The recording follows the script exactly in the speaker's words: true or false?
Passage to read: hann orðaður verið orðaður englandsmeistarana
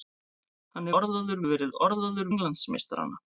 true